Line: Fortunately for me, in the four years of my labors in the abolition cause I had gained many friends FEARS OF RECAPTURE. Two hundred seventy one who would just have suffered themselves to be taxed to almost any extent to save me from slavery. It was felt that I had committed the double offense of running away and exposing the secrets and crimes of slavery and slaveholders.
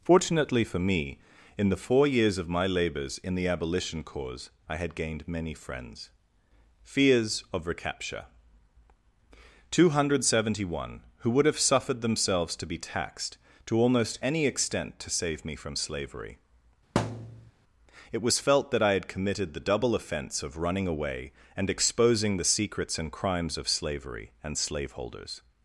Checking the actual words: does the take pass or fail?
fail